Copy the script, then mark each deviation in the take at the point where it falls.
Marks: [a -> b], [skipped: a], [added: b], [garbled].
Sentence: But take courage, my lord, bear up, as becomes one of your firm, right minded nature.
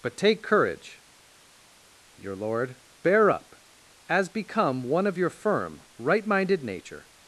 But take courage, [my -> your] lord, bear up, as [becomes -> become] one of your firm, right minded nature.